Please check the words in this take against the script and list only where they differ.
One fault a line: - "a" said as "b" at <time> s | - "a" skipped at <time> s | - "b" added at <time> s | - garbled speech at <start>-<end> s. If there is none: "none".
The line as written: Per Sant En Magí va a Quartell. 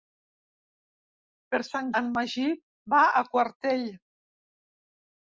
none